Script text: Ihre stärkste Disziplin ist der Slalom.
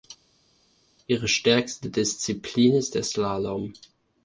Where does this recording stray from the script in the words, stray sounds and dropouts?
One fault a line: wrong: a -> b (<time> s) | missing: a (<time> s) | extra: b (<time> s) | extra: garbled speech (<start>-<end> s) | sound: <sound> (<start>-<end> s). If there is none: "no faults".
no faults